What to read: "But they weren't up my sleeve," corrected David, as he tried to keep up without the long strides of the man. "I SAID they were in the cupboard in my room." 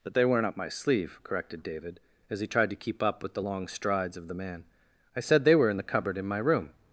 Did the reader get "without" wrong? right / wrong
wrong